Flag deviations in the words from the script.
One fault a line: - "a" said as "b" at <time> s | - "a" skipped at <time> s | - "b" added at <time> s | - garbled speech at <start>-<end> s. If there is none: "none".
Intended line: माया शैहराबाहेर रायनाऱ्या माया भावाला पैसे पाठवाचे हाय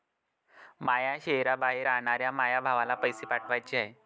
none